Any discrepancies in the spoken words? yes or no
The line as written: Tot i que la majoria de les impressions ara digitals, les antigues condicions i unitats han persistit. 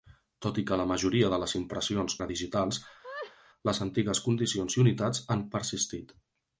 no